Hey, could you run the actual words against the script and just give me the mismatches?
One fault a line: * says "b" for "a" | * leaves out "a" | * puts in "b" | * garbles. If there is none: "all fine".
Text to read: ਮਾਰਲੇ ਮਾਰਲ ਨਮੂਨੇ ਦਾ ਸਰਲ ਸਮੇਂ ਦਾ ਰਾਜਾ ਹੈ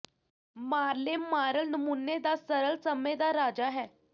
all fine